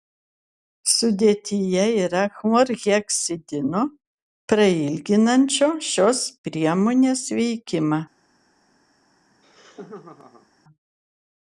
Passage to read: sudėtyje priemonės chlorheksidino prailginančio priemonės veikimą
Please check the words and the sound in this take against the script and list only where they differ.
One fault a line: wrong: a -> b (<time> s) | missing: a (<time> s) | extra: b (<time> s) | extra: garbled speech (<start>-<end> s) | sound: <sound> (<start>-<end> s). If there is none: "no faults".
wrong: priemonės -> yra (2.0 s)
extra: šios (5.9 s)
sound: laugh (9.3-10.5 s)